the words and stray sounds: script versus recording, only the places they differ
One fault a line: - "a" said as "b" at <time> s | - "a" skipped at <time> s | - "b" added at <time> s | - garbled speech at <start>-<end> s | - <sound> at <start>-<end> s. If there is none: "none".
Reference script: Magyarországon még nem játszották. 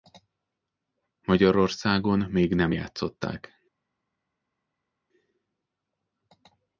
none